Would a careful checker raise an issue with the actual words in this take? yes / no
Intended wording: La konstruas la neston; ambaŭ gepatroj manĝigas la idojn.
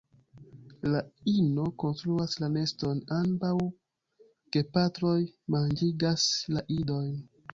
yes